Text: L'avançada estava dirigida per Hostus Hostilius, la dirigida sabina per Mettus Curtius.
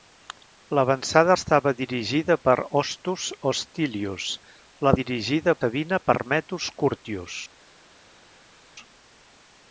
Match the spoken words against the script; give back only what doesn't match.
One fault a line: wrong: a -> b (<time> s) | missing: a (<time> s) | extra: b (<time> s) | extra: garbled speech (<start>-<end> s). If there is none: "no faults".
no faults